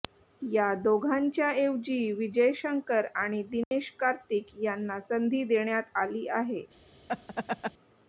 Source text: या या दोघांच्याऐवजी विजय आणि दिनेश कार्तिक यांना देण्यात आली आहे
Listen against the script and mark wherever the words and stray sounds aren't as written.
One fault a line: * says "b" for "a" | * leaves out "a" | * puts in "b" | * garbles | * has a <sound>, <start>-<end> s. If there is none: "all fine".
* leaves out "या"
* puts in "शंकर"
* has a dropout, 3.6-3.7 s
* puts in "संधी"
* has a laugh, 7.1-7.7 s